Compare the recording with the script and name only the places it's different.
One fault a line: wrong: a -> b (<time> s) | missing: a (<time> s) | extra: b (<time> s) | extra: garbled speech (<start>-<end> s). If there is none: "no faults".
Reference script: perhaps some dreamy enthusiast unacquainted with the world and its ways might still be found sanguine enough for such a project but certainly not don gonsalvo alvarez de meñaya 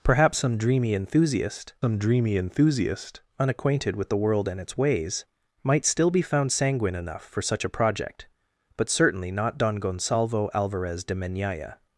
extra: some dreamy enthusiast (1.8 s)